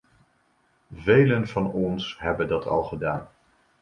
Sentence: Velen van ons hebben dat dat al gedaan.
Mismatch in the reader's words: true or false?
true